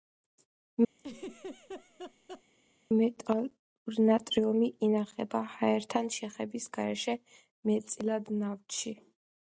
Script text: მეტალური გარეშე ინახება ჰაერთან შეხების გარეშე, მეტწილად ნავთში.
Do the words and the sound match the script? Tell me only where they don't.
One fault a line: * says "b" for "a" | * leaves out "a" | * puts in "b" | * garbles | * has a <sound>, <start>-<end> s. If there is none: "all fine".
* has a laugh, 1.0-2.4 s
* says "ნატრიუმი" for "გარეშე"